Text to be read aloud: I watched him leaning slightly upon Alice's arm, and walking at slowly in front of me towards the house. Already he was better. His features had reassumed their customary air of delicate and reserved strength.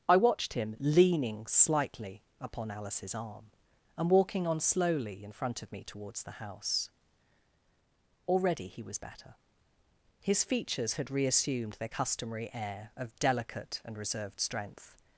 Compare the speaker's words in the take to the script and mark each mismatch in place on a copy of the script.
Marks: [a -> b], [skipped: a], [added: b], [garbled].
I watched him leaning slightly upon Alice's arm, and walking [at -> on] slowly in front of me towards the house. Already he was better. His features had reassumed their customary air of delicate and reserved strength.